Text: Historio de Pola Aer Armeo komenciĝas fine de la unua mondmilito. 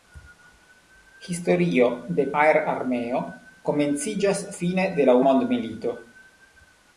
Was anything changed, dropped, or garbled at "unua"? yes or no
yes